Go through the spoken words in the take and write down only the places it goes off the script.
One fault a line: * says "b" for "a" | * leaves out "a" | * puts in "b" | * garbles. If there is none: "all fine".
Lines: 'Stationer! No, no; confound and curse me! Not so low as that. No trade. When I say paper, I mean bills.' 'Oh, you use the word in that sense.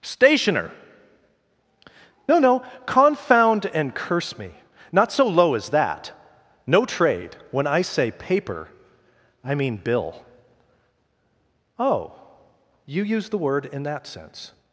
* says "bill" for "bills"